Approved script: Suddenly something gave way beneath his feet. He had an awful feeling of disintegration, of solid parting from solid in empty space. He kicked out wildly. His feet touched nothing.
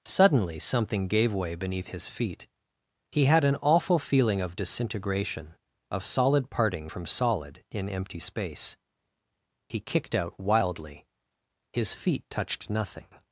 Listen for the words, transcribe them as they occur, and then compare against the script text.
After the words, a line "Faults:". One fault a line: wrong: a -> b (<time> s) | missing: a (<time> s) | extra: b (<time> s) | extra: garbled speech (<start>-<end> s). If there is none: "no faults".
Suddenly something gave way beneath his feet. He had an awful feeling of disintegration, of solid parting from solid in empty space. He kicked out wildly. His feet touched nothing.
Faults:
no faults